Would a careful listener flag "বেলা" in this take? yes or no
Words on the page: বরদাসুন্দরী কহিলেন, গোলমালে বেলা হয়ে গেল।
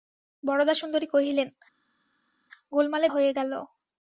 yes